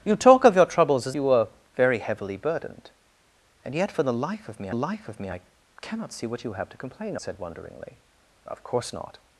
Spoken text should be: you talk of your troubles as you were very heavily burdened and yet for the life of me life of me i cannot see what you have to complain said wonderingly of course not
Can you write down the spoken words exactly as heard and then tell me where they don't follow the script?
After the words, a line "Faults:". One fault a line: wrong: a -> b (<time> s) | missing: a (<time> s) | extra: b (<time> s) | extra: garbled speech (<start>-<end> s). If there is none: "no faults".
you talk of your troubles as you were very heavily burdened and yet for the life of me life of me i cannot see what you have to complain said wonderingly of course not
Faults:
no faults